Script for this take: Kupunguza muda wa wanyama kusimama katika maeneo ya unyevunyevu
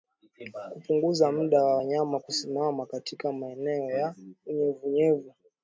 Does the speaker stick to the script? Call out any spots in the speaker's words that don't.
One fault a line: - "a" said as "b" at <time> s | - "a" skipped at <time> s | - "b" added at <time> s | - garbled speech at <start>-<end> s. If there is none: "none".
none